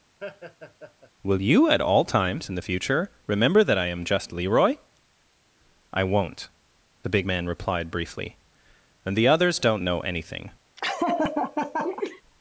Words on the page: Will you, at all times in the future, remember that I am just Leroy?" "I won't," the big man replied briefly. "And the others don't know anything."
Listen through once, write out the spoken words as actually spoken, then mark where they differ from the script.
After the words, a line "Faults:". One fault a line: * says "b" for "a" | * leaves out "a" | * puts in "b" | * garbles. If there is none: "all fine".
Will you, at all times in the future, remember that I am just Leroy?" "I won't," the big man replied briefly. "And the others don't know anything."
Faults:
all fine